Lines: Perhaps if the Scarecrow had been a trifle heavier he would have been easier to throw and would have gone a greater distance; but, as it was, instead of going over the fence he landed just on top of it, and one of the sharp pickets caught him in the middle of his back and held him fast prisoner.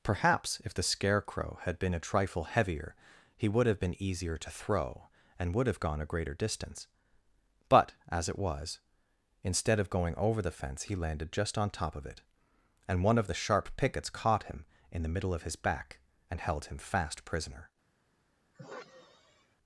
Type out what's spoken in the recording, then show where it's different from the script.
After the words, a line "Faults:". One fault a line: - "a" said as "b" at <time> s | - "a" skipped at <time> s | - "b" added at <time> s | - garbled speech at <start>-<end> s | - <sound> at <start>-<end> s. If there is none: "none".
Perhaps if the Scarecrow had been a trifle heavier he would have been easier to throw and would have gone a greater distance; but, as it was, instead of going over the fence he landed just on top of it, and one of the sharp pickets caught him in the middle of his back and held him fast prisoner.
Faults:
- sigh at 18.5-19.6 s